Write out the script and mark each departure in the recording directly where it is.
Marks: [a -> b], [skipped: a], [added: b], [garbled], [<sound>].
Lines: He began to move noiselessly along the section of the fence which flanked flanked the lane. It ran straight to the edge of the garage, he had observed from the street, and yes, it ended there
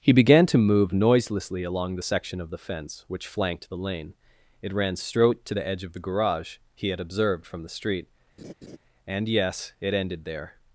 He began to move noiselessly along the section of the fence which flanked [skipped: flanked] the lane. It ran straight to the edge of the garage, he had observed from the street, [laugh] and yes, it ended there